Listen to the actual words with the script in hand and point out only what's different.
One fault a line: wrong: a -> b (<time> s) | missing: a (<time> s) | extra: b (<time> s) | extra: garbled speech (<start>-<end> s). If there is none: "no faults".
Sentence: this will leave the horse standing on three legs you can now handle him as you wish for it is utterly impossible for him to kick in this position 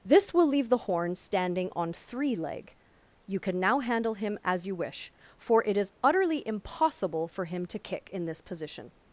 wrong: horse -> horn (0.8 s)
wrong: legs -> leg (2.4 s)